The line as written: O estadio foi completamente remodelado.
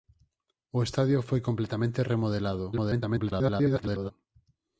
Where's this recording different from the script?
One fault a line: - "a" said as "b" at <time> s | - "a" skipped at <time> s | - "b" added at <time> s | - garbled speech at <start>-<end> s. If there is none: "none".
- garbled speech at 2.7-4.1 s